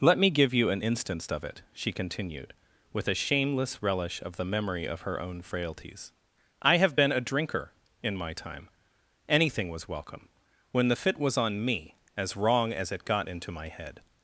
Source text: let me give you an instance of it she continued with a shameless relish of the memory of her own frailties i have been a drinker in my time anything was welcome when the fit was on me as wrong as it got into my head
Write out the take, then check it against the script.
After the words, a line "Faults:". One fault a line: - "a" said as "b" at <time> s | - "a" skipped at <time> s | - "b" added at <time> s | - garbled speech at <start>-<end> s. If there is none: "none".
let me give you an instance of it she continued with a shameless relish of the memory of her own frailties i have been a drinker in my time anything was welcome when the fit was on me as wrong as it got into my head
Faults:
none